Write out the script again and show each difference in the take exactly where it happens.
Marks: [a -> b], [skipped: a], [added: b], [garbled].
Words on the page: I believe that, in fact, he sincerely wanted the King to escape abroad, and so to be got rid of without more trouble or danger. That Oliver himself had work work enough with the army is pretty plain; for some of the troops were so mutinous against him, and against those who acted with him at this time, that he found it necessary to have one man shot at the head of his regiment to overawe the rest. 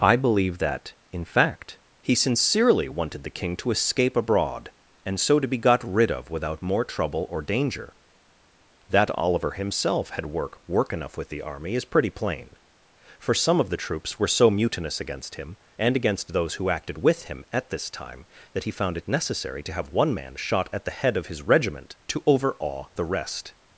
I believe that, in fact, he sincerely wanted the King to escape abroad, and so to be got rid of without more trouble or danger. That Oliver himself had work work enough with the army is pretty plain; for some of the troops were so mutinous against him, and against those who acted with him at this time, that he found it necessary to have one man shot at the head of his regiment to overawe the rest.